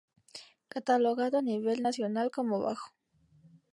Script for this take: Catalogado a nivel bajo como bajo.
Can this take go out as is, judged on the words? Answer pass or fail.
fail